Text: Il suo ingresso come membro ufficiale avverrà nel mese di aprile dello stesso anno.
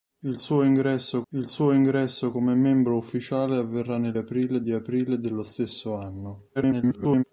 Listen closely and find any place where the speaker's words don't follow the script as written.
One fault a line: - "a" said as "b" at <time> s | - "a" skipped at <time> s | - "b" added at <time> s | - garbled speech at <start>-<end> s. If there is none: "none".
- "il suo ingresso" added at 1.3 s
- "mese" said as "aprile" at 4.1 s
- garbled speech at 6.6-7.2 s